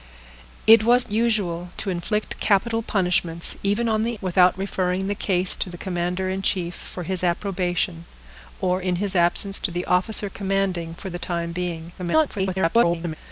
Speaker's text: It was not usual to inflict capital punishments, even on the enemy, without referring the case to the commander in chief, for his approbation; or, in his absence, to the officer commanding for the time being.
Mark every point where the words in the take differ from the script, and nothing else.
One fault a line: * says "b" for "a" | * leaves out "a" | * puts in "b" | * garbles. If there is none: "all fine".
* leaves out "not"
* leaves out "enemy"
* garbles